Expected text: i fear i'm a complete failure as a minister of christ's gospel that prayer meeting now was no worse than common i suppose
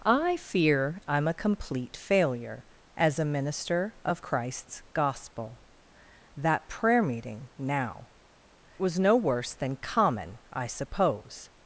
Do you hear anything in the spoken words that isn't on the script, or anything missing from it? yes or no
no